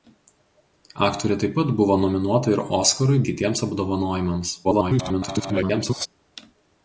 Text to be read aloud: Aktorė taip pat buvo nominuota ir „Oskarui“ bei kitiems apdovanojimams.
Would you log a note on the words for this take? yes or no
yes